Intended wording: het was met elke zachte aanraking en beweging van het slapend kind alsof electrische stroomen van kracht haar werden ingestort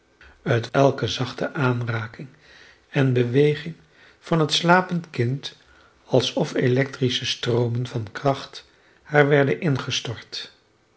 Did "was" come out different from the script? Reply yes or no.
yes